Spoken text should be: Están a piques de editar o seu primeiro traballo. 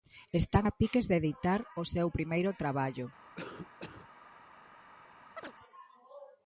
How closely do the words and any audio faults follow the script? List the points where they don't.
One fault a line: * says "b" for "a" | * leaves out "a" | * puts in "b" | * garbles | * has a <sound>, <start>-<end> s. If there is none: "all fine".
* has a cough, 3.4-4.1 s
* has a chirp, 5.4-5.5 s